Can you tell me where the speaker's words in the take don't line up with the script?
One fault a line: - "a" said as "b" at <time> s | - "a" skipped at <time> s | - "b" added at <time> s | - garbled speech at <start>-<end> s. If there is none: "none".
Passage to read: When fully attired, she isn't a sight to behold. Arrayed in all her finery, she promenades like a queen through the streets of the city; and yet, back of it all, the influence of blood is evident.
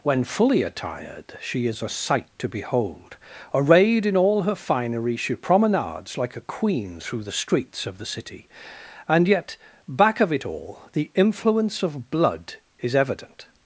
- "isn't" said as "is" at 1.7 s